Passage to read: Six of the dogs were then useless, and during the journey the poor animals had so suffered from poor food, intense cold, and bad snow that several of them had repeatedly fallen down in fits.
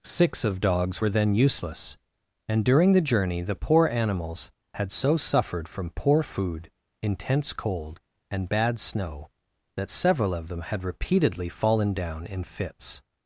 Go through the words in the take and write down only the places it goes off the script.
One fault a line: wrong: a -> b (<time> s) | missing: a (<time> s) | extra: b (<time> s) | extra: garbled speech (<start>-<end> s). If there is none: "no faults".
missing: the (0.6 s)